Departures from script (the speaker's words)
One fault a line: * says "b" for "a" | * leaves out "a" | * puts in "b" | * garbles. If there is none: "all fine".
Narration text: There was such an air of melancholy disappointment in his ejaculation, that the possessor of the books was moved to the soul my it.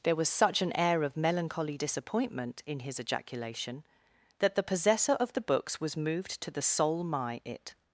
all fine